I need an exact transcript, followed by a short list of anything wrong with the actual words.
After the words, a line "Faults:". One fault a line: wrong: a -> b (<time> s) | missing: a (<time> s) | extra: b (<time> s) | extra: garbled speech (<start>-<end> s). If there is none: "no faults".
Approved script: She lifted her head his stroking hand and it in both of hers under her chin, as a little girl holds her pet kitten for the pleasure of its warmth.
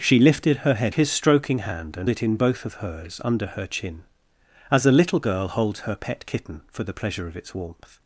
She lifted her head his stroking hand and it in both of hers under her chin, as a little girl holds her pet kitten for the pleasure of its warmth.
Faults:
no faults